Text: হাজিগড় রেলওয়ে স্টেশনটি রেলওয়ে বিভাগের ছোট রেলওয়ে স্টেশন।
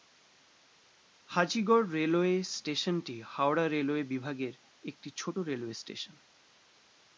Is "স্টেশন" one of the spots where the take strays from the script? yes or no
no